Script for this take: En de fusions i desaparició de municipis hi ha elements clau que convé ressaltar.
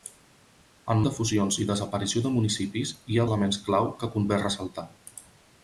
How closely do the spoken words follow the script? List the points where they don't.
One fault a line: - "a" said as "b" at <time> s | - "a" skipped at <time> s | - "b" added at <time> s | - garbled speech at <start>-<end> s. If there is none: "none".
none